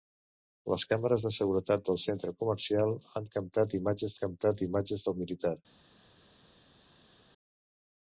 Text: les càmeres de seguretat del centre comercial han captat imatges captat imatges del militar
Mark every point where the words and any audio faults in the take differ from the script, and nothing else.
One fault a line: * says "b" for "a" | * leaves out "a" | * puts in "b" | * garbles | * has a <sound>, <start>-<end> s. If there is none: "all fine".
all fine